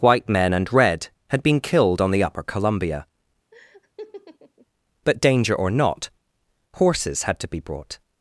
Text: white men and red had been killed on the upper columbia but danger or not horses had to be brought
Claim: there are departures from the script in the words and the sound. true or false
true